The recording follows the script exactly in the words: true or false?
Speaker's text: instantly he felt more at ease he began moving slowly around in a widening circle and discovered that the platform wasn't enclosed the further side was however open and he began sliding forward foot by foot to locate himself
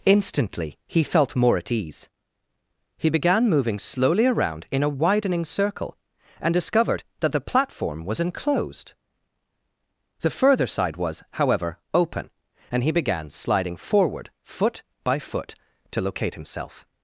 false